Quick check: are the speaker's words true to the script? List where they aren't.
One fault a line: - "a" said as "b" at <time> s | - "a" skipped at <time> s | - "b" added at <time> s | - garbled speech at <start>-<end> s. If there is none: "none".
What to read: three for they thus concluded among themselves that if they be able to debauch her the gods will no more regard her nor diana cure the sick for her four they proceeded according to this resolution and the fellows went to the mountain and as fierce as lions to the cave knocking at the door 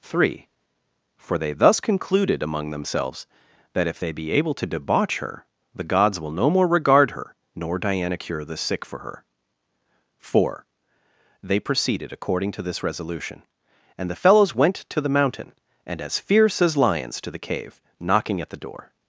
none